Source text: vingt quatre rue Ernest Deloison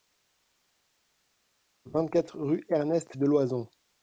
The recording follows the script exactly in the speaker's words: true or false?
true